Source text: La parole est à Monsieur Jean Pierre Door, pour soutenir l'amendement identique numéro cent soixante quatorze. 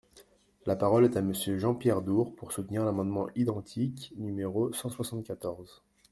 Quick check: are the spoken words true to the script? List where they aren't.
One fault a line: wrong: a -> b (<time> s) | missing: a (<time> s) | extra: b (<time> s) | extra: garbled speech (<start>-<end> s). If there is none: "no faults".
no faults